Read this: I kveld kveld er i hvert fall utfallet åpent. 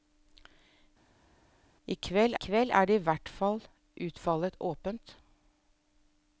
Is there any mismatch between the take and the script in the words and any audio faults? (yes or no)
no